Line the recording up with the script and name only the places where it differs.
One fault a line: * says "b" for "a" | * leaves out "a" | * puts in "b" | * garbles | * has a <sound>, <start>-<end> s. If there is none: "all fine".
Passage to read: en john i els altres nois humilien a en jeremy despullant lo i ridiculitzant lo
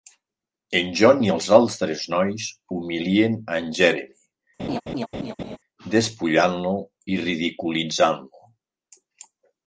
* has a laugh, 4.6-5.6 s